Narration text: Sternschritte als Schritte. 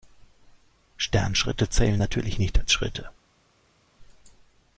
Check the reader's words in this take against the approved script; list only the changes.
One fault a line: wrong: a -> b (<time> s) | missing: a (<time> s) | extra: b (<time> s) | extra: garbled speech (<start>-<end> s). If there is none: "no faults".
extra: zählen natürlich nicht (1.7 s)